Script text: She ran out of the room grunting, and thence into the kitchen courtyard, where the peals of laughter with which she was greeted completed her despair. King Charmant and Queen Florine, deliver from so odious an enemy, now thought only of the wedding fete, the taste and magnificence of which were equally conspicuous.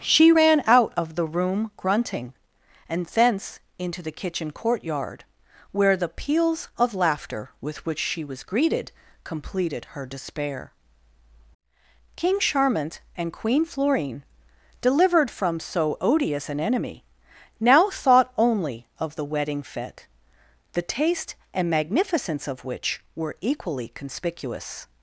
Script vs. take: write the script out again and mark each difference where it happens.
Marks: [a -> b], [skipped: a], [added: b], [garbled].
She ran out of the room grunting, and thence into the kitchen courtyard, where the peals of laughter with which she was greeted completed her despair. King Charmant and Queen Florine, [deliver -> delivered] from so odious an enemy, now thought only of the wedding fete, the taste and magnificence of which were equally conspicuous.